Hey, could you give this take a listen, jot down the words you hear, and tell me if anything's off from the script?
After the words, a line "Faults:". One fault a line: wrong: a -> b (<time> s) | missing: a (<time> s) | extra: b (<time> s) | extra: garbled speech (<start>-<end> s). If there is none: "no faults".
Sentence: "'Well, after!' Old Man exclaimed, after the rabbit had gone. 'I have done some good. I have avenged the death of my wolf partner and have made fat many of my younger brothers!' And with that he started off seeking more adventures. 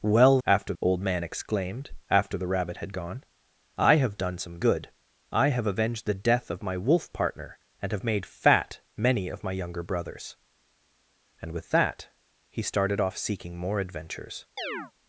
"'Well, after!' Old Man exclaimed, after the rabbit had gone. 'I have done some good. I have avenged the death of my wolf partner and have made fat many of my younger brothers!' And with that he started off seeking more adventures.
Faults:
no faults